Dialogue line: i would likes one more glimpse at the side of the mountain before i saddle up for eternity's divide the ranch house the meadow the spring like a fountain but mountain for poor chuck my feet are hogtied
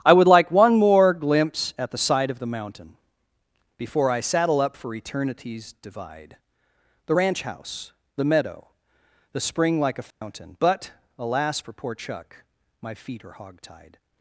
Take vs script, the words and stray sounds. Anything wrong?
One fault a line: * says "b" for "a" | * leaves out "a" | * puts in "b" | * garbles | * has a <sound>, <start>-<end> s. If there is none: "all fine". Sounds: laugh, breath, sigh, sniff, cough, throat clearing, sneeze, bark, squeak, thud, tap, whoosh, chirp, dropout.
* says "like" for "likes"
* has a dropout, 10.1-10.2 s
* says "alas" for "mountain"